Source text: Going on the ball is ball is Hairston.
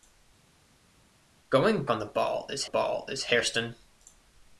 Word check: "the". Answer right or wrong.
right